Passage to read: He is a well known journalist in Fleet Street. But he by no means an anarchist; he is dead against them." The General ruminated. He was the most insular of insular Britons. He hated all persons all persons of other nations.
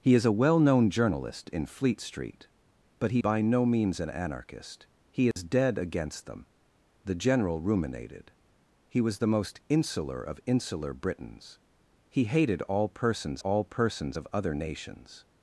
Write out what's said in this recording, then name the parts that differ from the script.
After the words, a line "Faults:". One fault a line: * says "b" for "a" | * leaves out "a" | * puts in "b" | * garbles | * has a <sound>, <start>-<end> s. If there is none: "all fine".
He is a well known journalist in Fleet Street. But he by no means an anarchist; he is dead against them." The General ruminated. He was the most insular of insular Britons. He hated all persons all persons of other nations.
Faults:
* has a dropout, 5.3-5.4 s